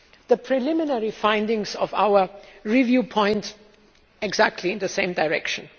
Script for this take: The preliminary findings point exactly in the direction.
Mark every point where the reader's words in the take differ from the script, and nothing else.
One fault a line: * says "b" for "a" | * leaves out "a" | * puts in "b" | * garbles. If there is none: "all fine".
* puts in "of our review"
* puts in "same"